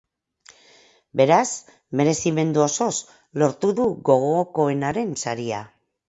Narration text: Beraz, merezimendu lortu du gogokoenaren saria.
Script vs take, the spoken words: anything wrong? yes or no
yes